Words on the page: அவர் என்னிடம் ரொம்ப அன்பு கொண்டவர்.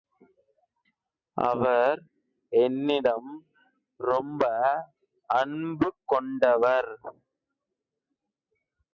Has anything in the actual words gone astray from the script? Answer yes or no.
no